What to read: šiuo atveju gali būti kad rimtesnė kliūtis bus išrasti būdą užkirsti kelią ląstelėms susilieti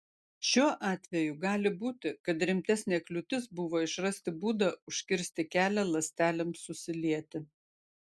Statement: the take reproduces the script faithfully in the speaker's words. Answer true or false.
false